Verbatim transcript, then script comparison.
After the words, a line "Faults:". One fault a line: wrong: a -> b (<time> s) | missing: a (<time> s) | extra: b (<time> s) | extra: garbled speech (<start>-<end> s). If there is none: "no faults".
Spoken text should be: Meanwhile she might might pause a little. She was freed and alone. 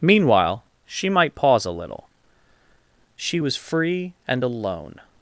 Meanwhile she might pause a little. She was free and alone.
Faults:
missing: might (1.4 s)
wrong: freed -> free (3.6 s)